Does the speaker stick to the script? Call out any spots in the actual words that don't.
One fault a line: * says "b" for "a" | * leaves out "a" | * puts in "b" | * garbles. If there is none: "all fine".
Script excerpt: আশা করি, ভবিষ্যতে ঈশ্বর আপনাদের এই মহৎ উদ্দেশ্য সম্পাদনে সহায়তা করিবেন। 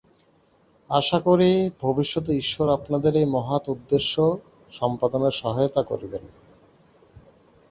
all fine